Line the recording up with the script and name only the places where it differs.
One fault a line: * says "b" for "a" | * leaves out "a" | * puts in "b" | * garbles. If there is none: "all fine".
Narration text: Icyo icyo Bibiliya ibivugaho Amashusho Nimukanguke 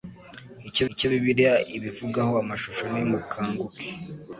all fine